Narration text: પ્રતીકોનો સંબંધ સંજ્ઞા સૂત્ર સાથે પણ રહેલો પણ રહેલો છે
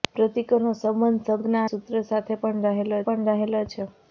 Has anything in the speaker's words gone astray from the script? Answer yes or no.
no